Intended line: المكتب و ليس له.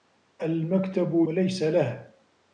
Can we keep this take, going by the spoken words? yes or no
yes